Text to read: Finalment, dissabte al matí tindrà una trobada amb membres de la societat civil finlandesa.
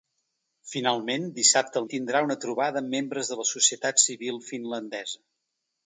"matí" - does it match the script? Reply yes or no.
no